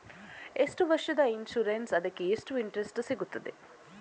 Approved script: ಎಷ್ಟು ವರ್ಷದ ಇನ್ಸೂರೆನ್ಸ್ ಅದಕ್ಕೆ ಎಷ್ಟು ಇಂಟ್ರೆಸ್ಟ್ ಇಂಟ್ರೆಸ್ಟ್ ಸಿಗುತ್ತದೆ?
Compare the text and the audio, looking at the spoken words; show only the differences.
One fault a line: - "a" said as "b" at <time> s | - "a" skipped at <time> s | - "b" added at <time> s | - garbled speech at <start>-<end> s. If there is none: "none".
- "ಇಂಟ್ರೆಸ್ಟ್" skipped at 3.0 s